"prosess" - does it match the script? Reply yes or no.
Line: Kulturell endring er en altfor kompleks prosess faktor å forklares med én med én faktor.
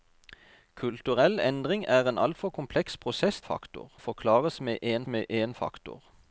yes